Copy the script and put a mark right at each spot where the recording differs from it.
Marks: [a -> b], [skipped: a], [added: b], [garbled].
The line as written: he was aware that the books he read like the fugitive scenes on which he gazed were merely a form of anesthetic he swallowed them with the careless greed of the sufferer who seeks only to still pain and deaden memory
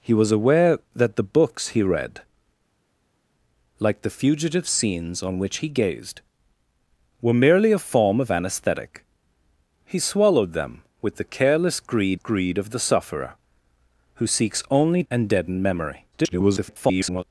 he was aware that the books he read like the fugitive scenes on which he gazed were merely a form of anesthetic he swallowed them with the careless greed [added: greed] of the sufferer who seeks only [skipped: to still pain] and deaden memory [garbled]